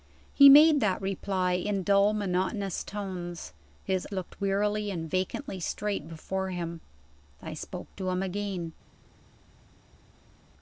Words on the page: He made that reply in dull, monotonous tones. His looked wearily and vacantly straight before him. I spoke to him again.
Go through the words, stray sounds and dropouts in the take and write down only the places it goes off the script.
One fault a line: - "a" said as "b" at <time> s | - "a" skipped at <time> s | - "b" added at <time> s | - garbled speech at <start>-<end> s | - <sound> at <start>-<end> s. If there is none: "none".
none